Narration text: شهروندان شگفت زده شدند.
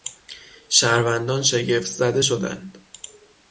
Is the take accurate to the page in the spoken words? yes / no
yes